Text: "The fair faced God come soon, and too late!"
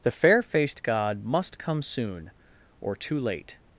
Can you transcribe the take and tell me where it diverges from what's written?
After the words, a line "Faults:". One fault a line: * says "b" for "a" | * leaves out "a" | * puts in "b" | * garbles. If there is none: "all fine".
"The fair faced God must come soon, or too late!"
Faults:
* puts in "must"
* says "or" for "and"